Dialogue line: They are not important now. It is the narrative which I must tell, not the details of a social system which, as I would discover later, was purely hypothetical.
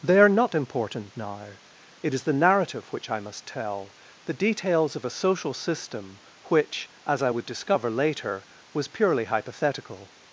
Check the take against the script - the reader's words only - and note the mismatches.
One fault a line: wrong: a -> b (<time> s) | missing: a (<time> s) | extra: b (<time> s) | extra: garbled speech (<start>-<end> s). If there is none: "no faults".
missing: not (3.9 s)